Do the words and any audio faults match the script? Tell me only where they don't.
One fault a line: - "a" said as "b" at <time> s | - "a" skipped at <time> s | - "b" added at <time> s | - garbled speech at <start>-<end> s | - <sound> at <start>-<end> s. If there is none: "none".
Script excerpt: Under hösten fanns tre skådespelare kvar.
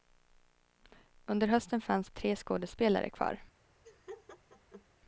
- laugh at 3.8-4.9 s